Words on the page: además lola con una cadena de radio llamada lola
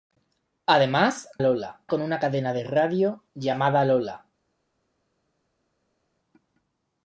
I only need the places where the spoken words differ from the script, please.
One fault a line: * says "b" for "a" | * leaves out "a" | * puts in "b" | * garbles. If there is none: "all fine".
all fine